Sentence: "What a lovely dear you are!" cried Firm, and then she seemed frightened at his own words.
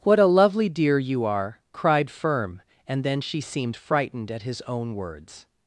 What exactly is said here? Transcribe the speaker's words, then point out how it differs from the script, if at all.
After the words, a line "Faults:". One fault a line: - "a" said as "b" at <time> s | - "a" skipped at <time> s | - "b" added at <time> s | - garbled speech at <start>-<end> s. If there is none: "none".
"What a lovely dear you are!" cried Firm, and then she seemed frightened at his own words.
Faults:
none